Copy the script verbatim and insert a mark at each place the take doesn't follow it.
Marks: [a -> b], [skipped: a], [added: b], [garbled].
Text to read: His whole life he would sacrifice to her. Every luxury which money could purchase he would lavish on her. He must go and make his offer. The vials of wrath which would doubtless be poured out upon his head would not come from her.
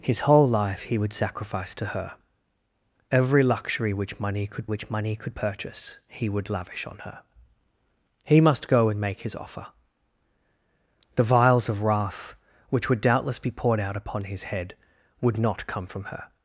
His whole life he would sacrifice to her. Every luxury which money could [added: which money could] purchase he would lavish on her. He must go and make his offer. The vials of wrath which would doubtless be poured out upon his head would not come from her.